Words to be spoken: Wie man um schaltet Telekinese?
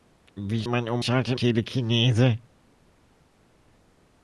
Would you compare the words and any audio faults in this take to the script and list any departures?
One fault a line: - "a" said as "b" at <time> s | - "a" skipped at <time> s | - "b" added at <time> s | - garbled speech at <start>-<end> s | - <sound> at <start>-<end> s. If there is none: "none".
none